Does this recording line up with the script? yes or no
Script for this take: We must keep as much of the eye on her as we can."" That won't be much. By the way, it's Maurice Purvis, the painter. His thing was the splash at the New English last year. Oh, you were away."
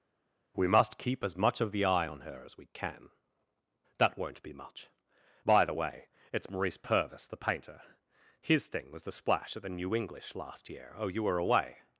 yes